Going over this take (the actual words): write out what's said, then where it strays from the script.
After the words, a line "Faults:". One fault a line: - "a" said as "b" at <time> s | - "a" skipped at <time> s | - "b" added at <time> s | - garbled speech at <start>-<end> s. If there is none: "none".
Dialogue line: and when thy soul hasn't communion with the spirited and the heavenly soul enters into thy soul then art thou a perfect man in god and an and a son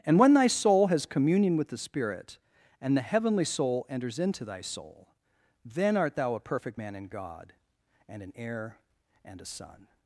and when thy soul has communion with the spirit and the heavenly soul enters into thy soul then art thou a perfect man in god and an heir and a son
Faults:
- "hasn't" said as "has" at 0.9 s
- "spirited" said as "spirit" at 1.8 s
- "heir" added at 8.4 s